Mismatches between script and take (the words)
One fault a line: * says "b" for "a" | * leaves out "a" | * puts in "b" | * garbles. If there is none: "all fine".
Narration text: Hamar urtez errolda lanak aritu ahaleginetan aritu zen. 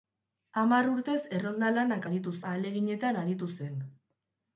all fine